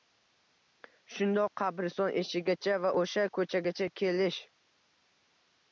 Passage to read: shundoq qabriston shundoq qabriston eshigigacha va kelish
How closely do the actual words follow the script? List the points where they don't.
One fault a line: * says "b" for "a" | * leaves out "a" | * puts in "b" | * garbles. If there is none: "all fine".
* says "eshigigacha va o'sha ko'chagacha" for "shundoq qabriston eshigigacha va"